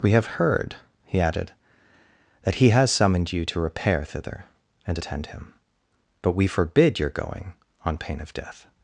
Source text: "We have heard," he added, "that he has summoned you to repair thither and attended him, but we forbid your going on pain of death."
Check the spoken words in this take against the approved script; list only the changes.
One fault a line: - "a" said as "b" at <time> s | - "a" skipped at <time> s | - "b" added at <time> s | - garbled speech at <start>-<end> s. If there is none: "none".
- "attended" said as "attend" at 4.9 s